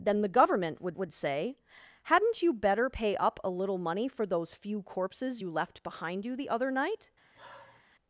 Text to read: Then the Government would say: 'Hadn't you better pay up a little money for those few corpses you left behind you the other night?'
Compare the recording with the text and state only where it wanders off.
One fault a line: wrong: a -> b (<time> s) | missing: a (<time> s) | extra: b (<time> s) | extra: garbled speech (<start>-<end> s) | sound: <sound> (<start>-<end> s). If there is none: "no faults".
extra: would (1.0 s)
sound: sigh (7.3-7.8 s)